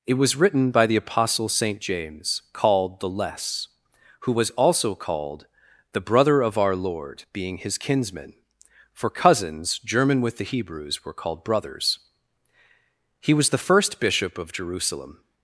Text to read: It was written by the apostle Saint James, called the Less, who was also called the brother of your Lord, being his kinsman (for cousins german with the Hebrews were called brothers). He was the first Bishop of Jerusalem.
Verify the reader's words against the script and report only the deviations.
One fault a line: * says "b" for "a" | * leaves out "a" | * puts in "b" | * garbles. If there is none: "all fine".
* says "our" for "your"